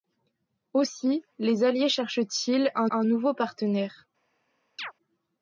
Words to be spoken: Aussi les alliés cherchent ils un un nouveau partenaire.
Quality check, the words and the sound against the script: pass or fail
fail